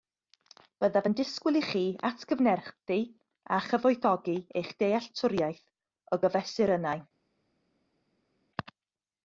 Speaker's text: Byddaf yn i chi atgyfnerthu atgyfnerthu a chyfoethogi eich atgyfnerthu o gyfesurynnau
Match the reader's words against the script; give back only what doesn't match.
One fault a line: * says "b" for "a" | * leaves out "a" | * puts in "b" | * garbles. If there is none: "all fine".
* puts in "disgwyl"
* leaves out "atgyfnerthu"
* says "dealltwriaeth" for "atgyfnerthu"